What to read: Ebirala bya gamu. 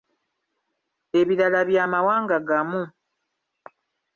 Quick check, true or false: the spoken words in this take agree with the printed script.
false